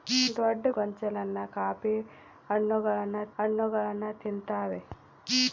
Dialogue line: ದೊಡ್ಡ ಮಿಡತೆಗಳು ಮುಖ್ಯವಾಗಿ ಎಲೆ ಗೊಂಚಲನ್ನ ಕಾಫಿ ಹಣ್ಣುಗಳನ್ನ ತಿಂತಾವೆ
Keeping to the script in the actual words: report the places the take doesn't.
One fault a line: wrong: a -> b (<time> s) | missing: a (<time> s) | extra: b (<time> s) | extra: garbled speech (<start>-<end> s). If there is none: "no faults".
missing: ಮಿಡತೆಗಳು ಮುಖ್ಯವಾಗಿ ಎಲೆ (0.7 s)
extra: ಹಣ್ಣುಗಳನ್ನ (3.4 s)